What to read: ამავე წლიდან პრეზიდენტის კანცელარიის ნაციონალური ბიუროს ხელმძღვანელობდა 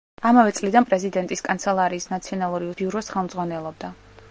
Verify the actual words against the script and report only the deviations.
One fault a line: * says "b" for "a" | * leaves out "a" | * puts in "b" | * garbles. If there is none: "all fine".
all fine